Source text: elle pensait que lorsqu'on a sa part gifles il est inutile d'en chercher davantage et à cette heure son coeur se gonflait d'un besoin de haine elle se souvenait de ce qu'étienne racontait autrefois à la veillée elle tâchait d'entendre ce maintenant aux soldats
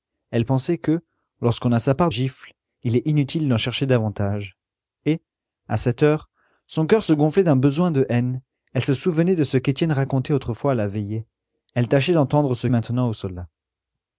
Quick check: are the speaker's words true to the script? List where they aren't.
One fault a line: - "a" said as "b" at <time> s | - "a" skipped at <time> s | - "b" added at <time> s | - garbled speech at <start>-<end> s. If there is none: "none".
none